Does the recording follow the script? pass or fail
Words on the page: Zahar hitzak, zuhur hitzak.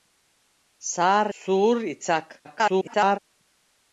fail